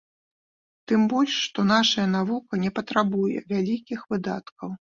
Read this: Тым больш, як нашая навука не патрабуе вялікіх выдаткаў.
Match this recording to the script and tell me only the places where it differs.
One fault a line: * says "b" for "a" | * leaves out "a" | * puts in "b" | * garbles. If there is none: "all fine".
* says "што" for "як"